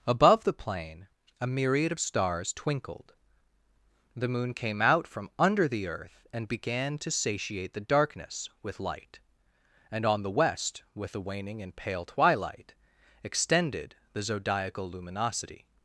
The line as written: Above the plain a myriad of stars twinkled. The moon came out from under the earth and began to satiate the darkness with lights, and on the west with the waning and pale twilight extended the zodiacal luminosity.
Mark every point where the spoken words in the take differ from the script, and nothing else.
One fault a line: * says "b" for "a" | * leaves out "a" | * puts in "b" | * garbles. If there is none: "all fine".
* says "light" for "lights"